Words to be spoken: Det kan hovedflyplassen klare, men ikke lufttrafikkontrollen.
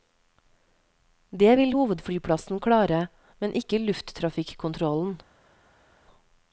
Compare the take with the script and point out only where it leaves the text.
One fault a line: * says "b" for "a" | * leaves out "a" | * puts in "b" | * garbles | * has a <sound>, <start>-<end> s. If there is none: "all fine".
* says "vil" for "kan"